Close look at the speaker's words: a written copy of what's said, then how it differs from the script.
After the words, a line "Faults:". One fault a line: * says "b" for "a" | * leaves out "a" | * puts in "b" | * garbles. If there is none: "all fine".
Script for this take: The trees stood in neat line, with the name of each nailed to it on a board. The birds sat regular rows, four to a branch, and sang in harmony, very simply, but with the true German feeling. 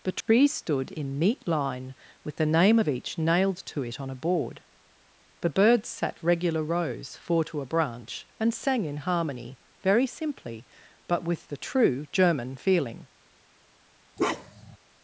The trees stood in neat line, with the name of each nailed to it on a board. The birds sat regular rows, four to a branch, and sang in harmony, very simply, but with the true German feeling.
Faults:
all fine